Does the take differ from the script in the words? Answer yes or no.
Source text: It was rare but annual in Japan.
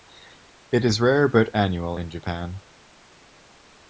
yes